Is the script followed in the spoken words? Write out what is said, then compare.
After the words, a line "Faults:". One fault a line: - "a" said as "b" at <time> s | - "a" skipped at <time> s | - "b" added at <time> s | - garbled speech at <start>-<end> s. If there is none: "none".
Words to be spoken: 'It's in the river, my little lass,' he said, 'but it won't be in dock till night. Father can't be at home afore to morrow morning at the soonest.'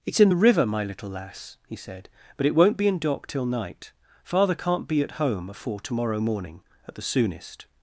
'It's in the river, my little lass,' he said, 'but it won't be in dock till night. Father can't be at home afore to morrow morning at the soonest.'
Faults:
none